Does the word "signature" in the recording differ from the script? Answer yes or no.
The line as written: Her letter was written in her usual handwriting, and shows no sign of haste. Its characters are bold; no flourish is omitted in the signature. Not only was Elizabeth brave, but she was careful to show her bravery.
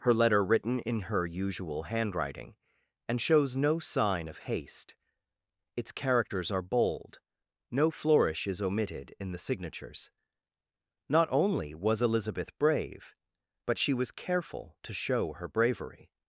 yes